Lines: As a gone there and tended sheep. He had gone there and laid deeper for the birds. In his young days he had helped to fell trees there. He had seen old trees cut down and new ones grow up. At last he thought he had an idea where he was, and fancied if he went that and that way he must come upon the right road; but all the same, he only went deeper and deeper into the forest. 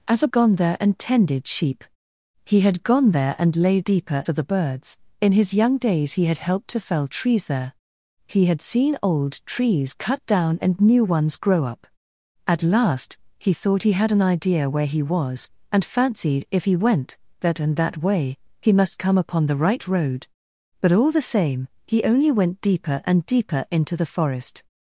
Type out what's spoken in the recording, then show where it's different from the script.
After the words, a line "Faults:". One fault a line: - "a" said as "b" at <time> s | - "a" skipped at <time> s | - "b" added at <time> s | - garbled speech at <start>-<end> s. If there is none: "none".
As a gone there and tended sheep. He had gone there and laid deeper for the birds. In his young days he had helped to fell trees there. He had seen old trees cut down and new ones grow up. At last he thought he had an idea where he was, and fancied if he went that and that way he must come upon the right road; but all the same, he only went deeper and deeper into the forest.
Faults:
none